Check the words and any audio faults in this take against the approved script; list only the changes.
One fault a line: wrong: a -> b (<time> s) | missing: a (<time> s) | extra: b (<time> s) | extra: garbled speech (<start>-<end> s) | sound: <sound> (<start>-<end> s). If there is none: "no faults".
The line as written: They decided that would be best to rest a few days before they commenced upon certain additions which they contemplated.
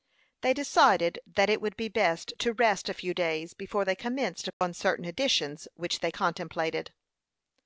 extra: it (1.5 s)
sound: dropout (4.5-4.6 s)